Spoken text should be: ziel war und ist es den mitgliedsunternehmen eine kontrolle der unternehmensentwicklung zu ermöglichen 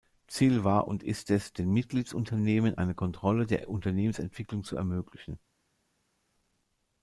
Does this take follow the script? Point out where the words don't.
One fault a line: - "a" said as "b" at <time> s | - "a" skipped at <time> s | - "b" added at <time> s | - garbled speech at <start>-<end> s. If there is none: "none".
none